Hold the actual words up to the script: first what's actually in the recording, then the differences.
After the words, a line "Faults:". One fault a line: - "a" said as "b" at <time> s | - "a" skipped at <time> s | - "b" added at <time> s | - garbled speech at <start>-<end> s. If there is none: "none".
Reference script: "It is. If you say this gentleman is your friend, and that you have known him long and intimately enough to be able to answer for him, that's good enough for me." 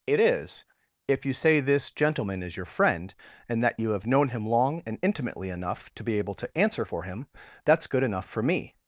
"It is. If you say this gentleman is your friend, and that you have known him long and intimately enough to be able to answer for him, that's good enough for me."
Faults:
none